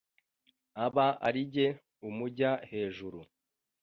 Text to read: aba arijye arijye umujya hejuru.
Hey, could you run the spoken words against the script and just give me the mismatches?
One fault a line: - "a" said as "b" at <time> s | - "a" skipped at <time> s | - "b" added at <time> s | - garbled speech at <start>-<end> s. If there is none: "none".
- "arijye" skipped at 1.7 s